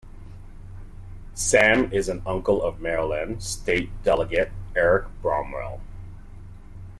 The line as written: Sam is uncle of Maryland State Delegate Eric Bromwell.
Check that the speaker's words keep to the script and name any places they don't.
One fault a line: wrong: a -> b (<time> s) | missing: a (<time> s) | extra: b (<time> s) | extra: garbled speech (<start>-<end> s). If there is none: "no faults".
extra: an (2.1 s)